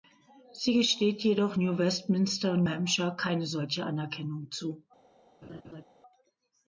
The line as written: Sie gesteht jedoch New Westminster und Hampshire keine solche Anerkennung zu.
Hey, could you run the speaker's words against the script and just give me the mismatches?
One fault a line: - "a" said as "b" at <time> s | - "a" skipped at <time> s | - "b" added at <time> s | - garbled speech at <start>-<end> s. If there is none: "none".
none